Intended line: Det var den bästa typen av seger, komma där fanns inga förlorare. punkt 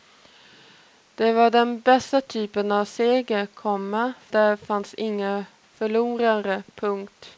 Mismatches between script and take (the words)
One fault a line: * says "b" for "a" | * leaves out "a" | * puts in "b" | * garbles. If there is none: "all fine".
all fine